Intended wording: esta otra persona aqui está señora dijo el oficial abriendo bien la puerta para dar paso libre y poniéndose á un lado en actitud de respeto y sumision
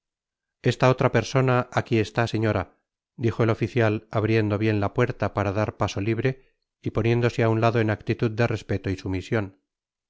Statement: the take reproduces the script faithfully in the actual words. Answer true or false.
true